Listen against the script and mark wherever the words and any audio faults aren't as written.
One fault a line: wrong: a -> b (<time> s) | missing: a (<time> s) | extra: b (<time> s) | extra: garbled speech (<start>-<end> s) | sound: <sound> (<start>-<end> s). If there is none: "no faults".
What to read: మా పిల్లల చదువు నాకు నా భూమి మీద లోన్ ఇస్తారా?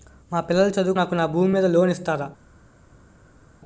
no faults